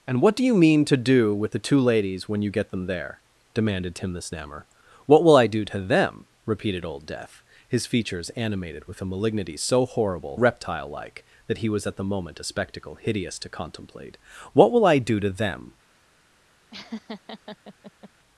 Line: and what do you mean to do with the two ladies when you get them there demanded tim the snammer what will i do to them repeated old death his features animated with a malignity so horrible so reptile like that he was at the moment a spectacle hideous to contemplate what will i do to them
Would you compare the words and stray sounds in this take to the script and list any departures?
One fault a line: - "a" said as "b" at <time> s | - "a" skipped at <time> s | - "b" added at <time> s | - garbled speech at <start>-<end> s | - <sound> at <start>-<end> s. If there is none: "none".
- "so" skipped at 10.4 s
- laugh at 16.7-18.1 s